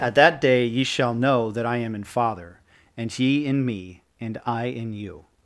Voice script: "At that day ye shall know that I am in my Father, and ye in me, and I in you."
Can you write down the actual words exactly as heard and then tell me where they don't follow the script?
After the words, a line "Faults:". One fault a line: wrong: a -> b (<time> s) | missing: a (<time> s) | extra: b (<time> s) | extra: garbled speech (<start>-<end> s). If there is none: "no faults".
"At that day ye shall know that I am in Father, and ye in me, and I in you."
Faults:
missing: my (2.0 s)